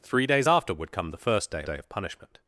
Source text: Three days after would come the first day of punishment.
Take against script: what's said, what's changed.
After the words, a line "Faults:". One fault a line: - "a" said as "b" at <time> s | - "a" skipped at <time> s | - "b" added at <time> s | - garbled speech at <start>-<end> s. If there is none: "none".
Three days after would come the first day day of punishment.
Faults:
- "day" added at 1.7 s